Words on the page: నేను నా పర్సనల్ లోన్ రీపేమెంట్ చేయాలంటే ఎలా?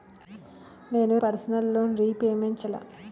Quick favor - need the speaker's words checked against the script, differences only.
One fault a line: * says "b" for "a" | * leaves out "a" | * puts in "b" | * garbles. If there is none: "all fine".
* leaves out "నా"
* leaves out "చేయాలంటే"